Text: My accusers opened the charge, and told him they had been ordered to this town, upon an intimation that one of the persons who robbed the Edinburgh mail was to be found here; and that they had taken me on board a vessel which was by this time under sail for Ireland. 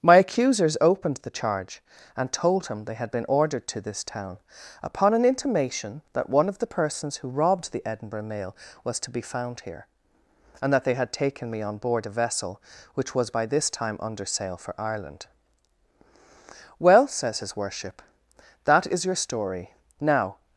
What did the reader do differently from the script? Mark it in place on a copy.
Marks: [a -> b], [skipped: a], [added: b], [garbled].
My accusers opened the charge, and told him they had been ordered to this town, upon an intimation that one of the persons who robbed the Edinburgh mail was to be found here; and that they had taken me on board a vessel which was by this time under sail for Ireland. [added: Well says his worship that is your story now]